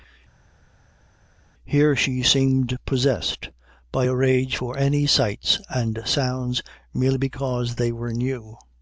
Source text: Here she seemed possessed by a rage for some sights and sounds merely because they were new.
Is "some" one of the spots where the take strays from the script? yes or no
yes